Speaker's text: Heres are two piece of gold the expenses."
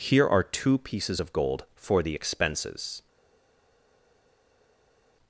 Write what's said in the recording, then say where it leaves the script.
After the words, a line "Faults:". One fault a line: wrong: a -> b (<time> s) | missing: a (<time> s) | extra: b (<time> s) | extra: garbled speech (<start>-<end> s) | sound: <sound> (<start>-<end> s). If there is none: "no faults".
Here are two pieces of gold for the expenses."
Faults:
wrong: Heres -> Here (0.0 s)
wrong: piece -> pieces (0.8 s)
extra: for (1.7 s)